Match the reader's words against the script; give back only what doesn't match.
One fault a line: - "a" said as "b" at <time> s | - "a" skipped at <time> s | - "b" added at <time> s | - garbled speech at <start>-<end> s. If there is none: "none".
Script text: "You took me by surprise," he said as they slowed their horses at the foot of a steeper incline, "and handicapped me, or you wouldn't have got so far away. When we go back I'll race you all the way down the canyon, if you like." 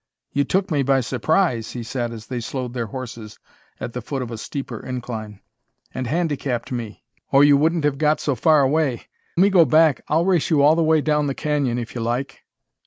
- "When" skipped at 9.0 s